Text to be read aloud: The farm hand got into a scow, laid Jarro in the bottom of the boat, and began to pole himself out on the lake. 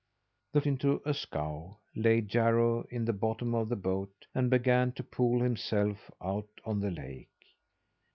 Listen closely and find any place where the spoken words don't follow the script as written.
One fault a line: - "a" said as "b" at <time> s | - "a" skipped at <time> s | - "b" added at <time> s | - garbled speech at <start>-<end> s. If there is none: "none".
- "farm hand got" skipped at 0.6 s